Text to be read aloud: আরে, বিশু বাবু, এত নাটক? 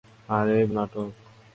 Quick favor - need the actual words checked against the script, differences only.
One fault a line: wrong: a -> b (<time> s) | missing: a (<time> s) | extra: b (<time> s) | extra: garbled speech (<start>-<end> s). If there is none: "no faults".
missing: বিশু বাবু এত (0.6 s)